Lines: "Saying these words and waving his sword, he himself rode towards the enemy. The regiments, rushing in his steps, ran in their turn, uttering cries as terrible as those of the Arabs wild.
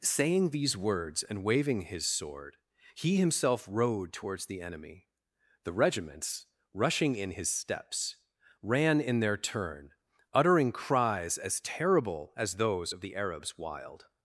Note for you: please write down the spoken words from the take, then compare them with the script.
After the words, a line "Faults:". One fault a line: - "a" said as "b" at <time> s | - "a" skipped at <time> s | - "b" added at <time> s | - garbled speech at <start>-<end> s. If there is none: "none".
"Saying these words and waving his sword, he himself rode towards the enemy. The regiments, rushing in his steps, ran in their turn, uttering cries as terrible as those of the Arabs wild.
Faults:
none